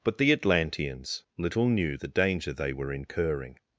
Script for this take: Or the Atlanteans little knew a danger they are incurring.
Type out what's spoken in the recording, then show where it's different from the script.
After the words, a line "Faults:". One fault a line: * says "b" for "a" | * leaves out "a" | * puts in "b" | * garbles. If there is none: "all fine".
But the Atlanteans little knew the danger they were incurring.
Faults:
* says "But" for "Or"
* says "the" for "a"
* says "were" for "are"